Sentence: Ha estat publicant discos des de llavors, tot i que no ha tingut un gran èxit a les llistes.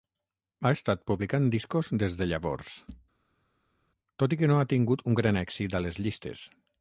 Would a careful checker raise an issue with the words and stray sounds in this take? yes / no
no